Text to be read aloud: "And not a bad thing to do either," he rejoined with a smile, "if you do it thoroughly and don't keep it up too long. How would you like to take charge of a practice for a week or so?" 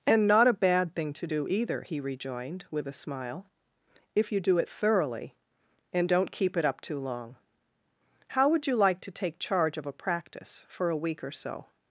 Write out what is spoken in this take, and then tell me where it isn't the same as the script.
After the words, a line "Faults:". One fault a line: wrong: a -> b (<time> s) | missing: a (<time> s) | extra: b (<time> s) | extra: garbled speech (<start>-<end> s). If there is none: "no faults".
"And not a bad thing to do either," he rejoined with a smile, "if you do it thoroughly and don't keep it up too long. How would you like to take charge of a practice for a week or so?"
Faults:
no faults